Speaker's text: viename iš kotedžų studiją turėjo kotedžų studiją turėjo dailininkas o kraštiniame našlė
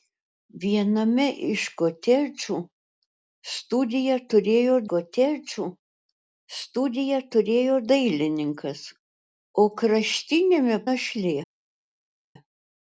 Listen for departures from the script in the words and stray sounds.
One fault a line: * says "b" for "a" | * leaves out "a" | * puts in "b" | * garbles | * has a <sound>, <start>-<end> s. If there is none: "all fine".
all fine